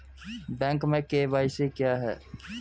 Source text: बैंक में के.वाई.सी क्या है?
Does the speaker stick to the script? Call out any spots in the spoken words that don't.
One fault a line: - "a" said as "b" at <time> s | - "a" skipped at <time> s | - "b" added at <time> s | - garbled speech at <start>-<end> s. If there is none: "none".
none